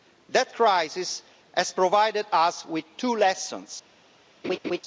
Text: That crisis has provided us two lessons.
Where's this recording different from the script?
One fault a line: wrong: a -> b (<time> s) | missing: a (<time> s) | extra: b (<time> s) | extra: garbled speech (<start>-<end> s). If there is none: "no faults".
extra: with (2.7 s)